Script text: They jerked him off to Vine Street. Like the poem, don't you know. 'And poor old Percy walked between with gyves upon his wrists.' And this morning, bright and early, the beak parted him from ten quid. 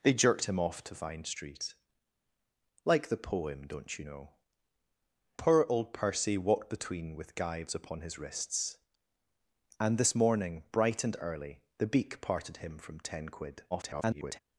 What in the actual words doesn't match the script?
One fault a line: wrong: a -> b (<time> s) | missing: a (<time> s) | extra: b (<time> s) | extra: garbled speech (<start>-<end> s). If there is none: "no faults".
missing: And (4.3 s)
extra: garbled speech (13.7-14.4 s)